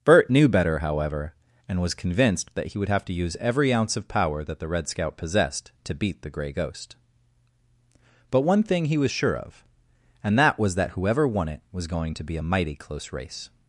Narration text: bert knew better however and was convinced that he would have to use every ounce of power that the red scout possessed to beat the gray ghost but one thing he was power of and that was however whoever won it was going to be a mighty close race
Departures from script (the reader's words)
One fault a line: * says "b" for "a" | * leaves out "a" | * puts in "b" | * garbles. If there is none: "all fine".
* says "sure" for "power"
* says "that" for "however"